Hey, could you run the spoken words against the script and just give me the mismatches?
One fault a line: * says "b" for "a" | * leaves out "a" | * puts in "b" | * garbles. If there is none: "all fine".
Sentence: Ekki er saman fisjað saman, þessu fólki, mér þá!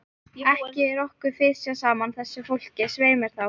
* says "okkur" for "saman"
* puts in "svei"